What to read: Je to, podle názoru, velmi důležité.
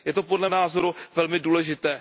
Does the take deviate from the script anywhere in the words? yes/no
no